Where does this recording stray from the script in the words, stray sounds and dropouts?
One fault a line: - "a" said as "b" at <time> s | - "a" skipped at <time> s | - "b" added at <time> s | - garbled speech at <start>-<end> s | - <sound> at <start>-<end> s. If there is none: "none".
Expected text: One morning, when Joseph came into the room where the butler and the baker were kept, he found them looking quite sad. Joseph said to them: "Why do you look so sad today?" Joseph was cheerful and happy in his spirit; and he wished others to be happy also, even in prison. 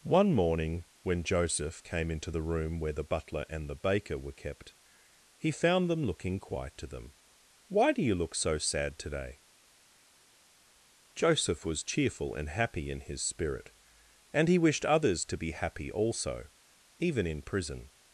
- "sad Joseph said" skipped at 6.8 s